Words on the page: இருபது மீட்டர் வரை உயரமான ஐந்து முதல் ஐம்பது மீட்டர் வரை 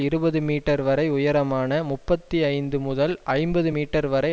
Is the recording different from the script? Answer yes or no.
yes